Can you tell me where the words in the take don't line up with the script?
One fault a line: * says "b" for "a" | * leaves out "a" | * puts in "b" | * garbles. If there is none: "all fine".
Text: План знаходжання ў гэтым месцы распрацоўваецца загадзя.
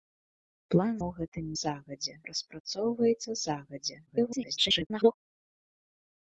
* leaves out "знаходжання"
* says "загадзя" for "месцы"
* garbles